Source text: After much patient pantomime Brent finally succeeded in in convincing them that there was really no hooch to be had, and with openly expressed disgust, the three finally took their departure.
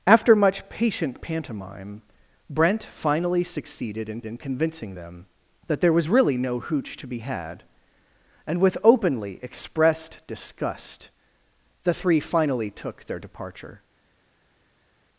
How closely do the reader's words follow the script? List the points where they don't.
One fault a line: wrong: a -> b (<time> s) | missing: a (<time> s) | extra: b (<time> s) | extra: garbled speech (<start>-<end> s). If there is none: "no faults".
no faults